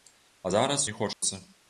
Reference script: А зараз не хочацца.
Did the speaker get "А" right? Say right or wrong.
right